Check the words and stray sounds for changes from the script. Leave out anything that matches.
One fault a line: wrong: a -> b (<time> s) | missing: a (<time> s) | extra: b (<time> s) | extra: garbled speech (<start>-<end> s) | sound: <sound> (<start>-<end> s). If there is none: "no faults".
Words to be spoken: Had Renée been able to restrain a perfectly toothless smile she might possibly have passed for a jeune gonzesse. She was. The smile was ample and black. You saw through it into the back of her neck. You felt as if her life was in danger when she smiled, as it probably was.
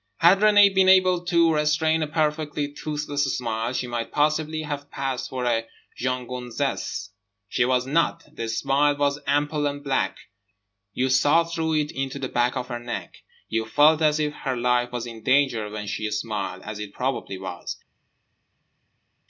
extra: not (7.8 s)